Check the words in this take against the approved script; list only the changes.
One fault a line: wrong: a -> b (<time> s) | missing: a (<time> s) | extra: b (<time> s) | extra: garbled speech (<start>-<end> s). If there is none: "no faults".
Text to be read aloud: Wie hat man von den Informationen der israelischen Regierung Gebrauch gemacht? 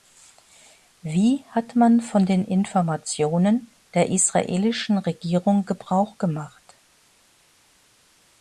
no faults